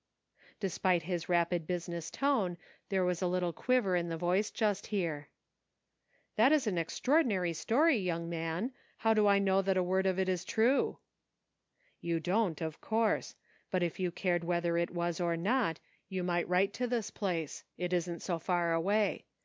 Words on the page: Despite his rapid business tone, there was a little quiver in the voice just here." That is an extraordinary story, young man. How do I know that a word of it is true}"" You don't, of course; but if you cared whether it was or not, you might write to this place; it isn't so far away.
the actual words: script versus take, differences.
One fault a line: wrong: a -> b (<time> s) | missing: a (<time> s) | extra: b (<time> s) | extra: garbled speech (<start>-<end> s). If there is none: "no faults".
no faults